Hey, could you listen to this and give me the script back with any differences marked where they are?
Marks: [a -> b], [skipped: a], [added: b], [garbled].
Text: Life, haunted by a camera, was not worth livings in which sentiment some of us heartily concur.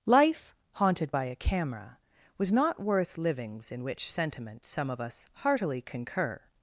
Life, haunted by a camera, was not worth livings in which sentiment some of us heartily concur.